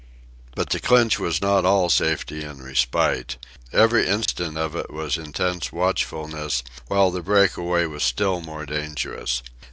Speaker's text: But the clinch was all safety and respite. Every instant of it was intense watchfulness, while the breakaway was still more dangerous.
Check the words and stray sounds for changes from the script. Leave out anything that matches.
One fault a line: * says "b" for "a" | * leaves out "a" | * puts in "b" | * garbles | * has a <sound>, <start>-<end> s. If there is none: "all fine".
* puts in "not"
* has a dropout, 4.3-4.3 s